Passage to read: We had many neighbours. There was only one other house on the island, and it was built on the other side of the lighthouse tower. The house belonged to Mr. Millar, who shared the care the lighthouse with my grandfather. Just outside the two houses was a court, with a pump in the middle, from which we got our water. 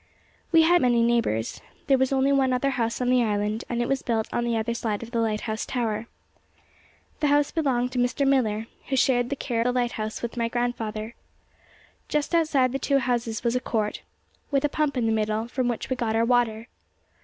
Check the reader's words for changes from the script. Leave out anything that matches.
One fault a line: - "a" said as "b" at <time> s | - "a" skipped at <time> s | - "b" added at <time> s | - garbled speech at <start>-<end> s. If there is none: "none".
none